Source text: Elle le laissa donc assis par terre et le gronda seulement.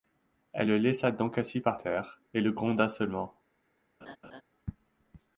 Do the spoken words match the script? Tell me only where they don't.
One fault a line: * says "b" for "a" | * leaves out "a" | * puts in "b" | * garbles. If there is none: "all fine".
all fine